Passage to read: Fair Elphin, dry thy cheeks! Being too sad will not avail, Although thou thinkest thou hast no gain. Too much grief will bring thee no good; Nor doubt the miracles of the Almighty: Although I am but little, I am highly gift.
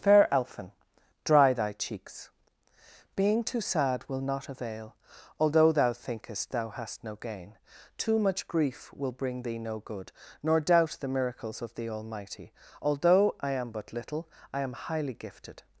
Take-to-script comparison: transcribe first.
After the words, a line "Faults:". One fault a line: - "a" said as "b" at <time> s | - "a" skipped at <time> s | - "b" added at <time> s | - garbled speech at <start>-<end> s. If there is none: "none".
Fair Elphin, dry thy cheeks! Being too sad will not avail, Although thou thinkest thou hast no gain. Too much grief will bring thee no good; Nor doubt the miracles of the Almighty: Although I am but little, I am highly gifted.
Faults:
- "gift" said as "gifted" at 15.1 s